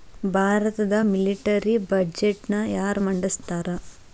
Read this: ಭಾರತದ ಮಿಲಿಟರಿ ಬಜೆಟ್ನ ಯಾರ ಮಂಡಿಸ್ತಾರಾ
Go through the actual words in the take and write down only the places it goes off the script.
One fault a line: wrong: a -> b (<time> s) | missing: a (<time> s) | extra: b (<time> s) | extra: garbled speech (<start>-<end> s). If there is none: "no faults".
no faults